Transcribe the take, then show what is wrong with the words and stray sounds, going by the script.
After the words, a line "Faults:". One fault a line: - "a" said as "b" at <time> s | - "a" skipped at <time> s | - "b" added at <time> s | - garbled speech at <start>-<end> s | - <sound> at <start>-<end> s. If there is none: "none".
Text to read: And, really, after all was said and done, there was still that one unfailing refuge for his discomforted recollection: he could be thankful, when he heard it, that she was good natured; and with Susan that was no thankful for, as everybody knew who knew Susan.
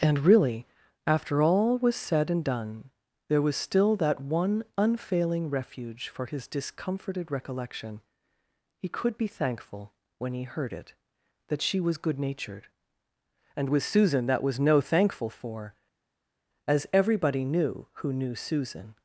And, really, after all was said and done, there was still that one unfailing refuge for his discomforted recollection: he could be thankful, when he heard it, that she was good natured; and with Susan that was no thankful for, as everybody knew who knew Susan.
Faults:
none